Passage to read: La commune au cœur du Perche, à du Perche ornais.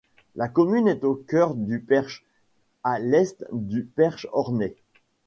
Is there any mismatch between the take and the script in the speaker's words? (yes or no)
yes